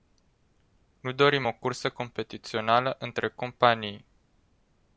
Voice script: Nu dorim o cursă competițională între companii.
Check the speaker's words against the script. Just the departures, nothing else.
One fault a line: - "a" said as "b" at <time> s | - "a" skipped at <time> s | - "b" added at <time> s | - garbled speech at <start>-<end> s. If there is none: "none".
none